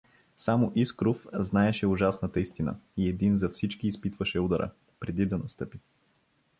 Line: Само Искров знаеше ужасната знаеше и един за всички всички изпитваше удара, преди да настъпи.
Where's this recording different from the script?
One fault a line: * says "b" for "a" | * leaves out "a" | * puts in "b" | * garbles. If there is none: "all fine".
* says "истина" for "знаеше"
* leaves out "всички"